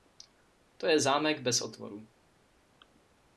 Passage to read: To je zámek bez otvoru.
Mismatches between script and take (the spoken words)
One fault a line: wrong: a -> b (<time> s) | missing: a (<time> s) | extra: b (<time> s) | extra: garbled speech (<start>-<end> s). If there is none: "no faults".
no faults